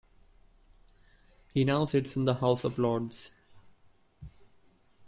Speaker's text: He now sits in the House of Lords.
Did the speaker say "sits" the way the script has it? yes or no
yes